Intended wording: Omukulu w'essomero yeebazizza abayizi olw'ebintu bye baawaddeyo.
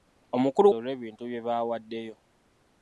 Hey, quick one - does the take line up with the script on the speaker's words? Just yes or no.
no